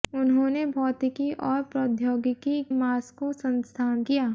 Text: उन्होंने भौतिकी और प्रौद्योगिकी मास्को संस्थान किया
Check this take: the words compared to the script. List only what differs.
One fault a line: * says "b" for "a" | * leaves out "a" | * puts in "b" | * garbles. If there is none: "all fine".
all fine